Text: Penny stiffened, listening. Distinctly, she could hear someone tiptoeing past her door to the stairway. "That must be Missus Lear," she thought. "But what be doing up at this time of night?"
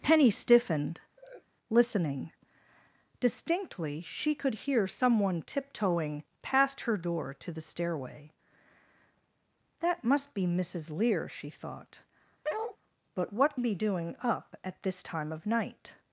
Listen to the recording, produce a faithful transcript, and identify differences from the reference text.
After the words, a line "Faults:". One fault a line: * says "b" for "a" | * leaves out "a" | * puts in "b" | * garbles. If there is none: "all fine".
Penny stiffened, listening. Distinctly, she could hear someone tiptoeing past her door to the stairway. "That must be Missus Lear," she thought. "But what be doing up at this time of night?"
Faults:
all fine